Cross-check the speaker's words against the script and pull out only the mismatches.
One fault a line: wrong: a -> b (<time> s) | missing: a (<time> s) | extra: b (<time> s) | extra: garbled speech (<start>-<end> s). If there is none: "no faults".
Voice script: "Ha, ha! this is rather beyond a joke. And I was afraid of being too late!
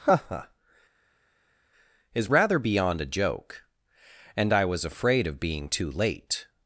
missing: this (0.5 s)